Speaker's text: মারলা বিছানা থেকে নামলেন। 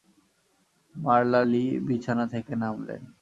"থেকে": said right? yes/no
yes